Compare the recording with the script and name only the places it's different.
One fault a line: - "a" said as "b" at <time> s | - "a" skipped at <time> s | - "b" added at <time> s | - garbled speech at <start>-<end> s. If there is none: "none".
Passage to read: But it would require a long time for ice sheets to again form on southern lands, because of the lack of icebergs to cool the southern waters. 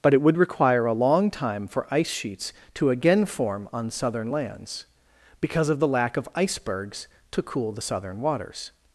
none